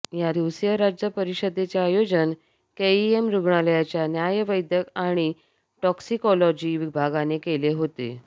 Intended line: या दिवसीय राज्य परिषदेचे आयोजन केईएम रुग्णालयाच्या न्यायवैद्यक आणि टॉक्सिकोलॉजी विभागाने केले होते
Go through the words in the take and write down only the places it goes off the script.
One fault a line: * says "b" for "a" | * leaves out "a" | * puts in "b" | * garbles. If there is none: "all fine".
all fine